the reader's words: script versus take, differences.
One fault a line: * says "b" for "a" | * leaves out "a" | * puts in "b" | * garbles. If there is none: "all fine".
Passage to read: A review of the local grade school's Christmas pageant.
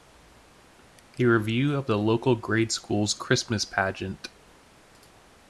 all fine